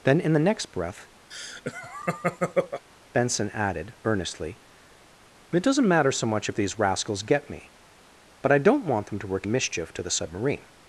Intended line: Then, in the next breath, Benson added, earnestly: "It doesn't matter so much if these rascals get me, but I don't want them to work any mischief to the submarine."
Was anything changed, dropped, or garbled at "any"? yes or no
yes